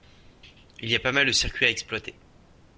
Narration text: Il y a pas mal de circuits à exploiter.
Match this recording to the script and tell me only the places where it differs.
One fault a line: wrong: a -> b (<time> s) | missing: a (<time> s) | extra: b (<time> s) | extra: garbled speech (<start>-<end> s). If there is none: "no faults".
no faults